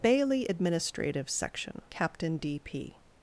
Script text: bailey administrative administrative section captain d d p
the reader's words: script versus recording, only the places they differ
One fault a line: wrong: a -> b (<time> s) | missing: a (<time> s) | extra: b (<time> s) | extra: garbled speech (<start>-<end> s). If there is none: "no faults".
missing: administrative (1.3 s)
missing: d (2.6 s)